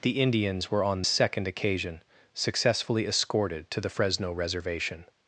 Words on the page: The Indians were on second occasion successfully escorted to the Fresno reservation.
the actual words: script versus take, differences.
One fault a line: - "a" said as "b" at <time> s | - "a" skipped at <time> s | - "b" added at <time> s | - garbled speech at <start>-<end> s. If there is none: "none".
none